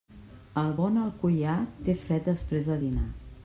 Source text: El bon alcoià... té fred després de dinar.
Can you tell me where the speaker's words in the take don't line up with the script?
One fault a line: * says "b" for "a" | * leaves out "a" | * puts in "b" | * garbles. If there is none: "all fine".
all fine